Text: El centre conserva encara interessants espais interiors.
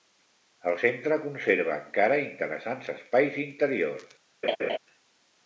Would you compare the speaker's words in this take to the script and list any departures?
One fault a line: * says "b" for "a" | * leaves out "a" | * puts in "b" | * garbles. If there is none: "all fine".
all fine